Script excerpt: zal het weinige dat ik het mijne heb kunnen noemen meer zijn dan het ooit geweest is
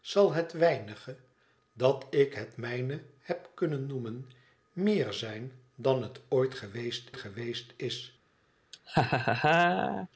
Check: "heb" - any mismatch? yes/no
no